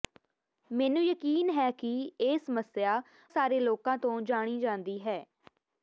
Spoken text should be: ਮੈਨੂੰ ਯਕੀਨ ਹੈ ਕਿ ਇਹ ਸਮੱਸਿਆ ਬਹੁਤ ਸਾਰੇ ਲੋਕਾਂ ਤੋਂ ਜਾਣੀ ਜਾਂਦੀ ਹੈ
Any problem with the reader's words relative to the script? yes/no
yes